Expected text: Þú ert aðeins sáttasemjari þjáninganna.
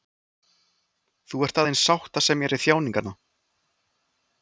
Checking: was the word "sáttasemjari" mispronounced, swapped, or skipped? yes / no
no